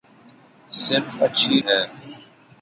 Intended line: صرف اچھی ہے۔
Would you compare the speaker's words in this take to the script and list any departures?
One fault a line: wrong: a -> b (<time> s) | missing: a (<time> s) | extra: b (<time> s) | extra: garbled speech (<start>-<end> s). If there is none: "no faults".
no faults